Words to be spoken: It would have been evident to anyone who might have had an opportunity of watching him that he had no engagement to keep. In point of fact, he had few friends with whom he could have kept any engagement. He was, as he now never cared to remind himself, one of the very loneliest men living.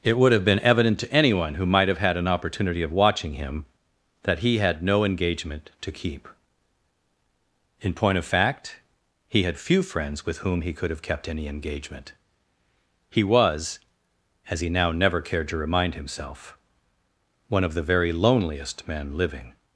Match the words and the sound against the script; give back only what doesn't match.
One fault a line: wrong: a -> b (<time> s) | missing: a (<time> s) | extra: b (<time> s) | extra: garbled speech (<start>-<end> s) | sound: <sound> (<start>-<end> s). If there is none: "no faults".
no faults